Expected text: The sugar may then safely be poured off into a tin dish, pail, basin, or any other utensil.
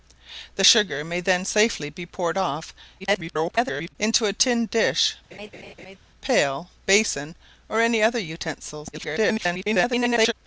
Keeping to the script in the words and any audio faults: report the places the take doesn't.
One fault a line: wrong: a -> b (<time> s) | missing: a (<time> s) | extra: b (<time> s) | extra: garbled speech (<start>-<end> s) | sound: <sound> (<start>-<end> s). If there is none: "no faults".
extra: garbled speech (3.0-4.0 s)
sound: laugh (5.3-6.0 s)
extra: garbled speech (8.9-10.3 s)